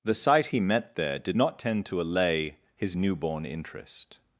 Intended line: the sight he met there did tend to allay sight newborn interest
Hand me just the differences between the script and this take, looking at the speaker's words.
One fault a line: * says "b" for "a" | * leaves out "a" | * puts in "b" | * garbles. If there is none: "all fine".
* puts in "not"
* says "his" for "sight"